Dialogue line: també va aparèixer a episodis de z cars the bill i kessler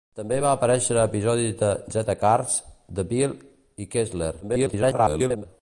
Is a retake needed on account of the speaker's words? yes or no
yes